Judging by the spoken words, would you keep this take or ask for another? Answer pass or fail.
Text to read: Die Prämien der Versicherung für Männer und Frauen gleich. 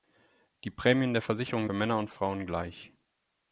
pass